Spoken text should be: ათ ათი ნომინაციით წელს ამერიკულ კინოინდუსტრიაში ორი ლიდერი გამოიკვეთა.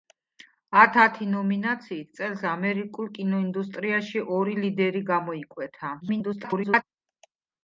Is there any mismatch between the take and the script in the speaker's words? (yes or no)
yes